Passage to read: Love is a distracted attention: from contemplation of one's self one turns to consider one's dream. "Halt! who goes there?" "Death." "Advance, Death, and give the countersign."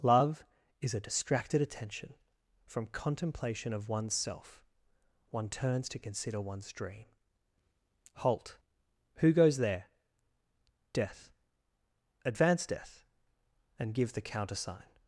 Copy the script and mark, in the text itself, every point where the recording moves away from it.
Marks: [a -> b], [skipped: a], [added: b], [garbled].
Love is a distracted attention: from contemplation of one's self one turns to consider one's dream. "Halt! who goes there?" "Death." "Advance, Death, and give the countersign."